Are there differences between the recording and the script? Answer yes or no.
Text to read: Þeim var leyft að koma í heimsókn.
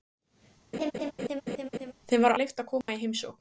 no